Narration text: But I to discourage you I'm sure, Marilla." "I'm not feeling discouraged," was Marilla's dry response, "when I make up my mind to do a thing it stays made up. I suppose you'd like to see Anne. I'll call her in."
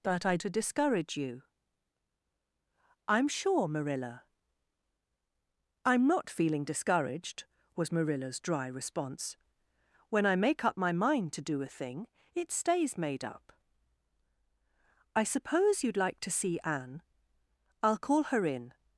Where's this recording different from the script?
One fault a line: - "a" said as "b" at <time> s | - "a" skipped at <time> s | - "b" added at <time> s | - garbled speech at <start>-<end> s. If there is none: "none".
none